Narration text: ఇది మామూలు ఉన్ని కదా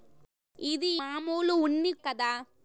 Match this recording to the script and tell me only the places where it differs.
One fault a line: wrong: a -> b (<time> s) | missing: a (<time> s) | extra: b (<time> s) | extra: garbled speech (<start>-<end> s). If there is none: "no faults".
no faults